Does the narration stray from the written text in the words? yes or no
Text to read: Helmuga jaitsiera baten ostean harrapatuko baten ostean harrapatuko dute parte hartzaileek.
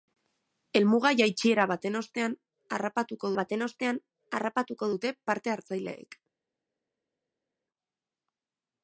no